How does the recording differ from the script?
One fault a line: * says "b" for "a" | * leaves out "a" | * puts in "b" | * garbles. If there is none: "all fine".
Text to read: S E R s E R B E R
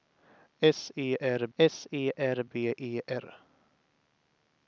all fine